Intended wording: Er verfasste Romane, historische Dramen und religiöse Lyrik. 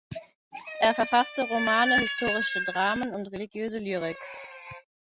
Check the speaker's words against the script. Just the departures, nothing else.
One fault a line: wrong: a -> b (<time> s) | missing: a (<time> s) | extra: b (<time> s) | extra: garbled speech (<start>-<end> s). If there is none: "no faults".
no faults